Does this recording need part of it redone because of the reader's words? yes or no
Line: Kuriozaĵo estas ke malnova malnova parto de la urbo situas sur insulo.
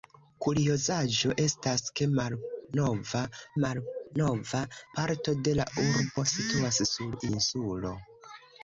no